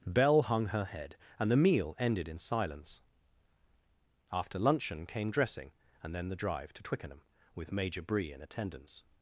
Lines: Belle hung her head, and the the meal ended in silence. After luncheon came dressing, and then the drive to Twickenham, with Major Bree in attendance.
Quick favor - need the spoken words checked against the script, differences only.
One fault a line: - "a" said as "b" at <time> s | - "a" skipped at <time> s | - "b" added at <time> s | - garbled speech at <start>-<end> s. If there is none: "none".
- "the" skipped at 1.6 s